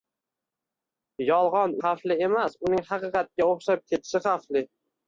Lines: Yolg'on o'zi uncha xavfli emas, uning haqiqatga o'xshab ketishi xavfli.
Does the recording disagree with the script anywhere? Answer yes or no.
yes